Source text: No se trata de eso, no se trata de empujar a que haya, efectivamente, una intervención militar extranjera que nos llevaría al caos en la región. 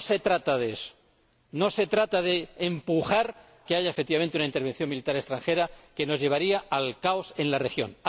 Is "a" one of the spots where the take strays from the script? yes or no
yes